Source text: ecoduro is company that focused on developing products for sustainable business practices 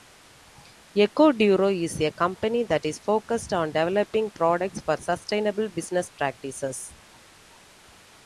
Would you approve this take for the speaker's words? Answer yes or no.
no